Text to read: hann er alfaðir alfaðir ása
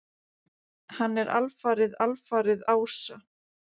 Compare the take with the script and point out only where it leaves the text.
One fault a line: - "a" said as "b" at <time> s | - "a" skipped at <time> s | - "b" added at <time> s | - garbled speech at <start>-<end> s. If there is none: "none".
none